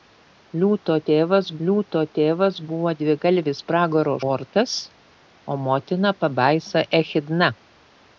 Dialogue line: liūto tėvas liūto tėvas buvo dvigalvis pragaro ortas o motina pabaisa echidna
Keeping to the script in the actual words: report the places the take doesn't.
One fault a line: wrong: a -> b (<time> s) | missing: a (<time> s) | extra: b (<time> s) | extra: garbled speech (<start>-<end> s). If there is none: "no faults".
no faults